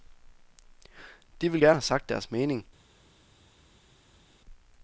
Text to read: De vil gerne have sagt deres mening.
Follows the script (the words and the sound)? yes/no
yes